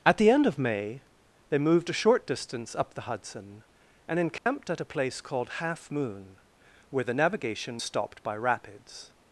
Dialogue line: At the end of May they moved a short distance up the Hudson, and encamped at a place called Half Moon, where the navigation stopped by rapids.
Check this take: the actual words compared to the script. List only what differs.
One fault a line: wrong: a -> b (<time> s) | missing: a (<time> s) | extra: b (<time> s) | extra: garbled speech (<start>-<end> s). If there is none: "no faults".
no faults